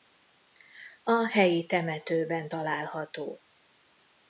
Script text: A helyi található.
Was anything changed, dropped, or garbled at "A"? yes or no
no